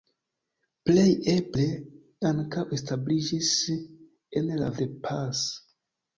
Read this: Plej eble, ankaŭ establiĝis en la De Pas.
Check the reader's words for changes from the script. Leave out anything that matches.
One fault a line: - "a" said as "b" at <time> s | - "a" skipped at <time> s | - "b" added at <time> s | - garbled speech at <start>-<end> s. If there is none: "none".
none